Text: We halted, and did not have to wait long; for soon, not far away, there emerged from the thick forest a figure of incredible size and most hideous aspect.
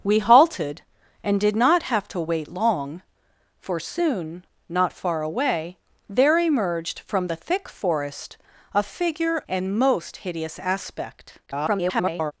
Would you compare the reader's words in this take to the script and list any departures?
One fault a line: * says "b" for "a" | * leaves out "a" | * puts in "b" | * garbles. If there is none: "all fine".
* leaves out "of incredible size"
* garbles